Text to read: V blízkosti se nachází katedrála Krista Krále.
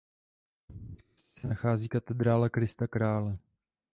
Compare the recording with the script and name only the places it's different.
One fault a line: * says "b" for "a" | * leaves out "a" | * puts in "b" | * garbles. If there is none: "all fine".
all fine